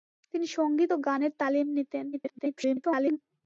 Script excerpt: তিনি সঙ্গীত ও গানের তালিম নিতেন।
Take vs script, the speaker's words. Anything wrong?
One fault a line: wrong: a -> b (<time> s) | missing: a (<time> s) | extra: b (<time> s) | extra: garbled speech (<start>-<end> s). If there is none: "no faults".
extra: garbled speech (2.1-3.2 s)